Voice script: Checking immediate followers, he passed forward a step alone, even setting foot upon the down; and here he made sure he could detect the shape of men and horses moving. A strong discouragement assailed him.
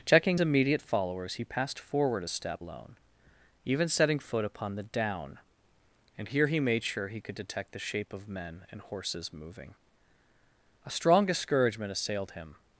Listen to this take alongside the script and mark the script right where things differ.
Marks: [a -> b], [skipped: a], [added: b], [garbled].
Checking immediate followers, he passed forward a step alone, even setting foot upon the down; and here he made sure he could detect the shape of men and horses moving. A strong discouragement assailed him.